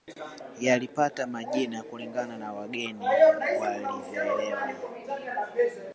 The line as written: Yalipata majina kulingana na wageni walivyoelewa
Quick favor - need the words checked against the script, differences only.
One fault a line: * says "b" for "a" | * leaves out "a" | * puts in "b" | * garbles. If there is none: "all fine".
all fine